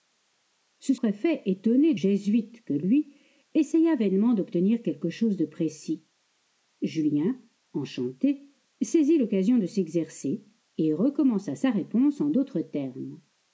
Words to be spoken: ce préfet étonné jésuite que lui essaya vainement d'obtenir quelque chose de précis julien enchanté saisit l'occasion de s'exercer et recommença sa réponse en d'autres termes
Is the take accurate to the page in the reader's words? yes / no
yes